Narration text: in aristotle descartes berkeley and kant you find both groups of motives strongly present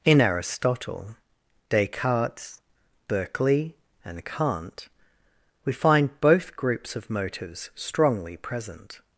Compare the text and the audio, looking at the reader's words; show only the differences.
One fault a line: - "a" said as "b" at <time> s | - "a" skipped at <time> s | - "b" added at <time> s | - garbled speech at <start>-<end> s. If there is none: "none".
- "you" said as "we" at 5.6 s